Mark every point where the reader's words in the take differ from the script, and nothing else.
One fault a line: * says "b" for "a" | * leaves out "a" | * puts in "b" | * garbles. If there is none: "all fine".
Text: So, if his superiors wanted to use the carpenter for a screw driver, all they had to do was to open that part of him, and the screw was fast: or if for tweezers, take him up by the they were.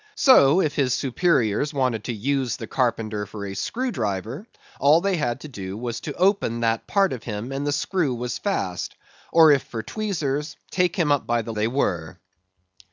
all fine